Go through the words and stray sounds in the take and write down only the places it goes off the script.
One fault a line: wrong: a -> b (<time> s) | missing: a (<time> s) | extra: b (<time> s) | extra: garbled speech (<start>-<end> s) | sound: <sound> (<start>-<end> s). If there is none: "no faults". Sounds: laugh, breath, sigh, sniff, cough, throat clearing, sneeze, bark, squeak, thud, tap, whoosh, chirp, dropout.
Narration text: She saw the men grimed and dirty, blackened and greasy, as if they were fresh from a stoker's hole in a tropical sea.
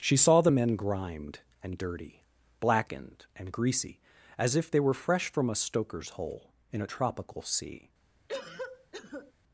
sound: cough (8.3-9.3 s)